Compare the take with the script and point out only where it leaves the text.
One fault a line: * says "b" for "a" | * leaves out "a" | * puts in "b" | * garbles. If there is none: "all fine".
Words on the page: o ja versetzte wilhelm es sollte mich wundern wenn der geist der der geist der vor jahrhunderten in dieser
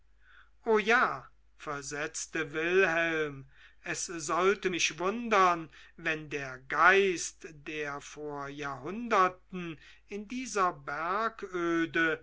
* leaves out "der geist der"